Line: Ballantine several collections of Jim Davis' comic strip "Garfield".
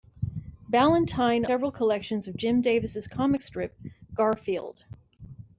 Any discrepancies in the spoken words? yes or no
no